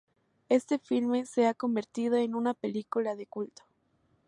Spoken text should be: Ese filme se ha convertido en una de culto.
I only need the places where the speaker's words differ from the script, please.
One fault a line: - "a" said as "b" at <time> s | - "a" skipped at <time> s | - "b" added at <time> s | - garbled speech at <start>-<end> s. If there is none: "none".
- "Ese" said as "Este" at 0.5 s
- "película" added at 2.5 s